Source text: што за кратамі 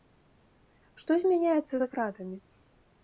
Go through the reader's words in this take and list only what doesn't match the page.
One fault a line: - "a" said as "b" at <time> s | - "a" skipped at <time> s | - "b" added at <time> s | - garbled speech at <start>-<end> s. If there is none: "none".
- "змяняецца" added at 1.2 s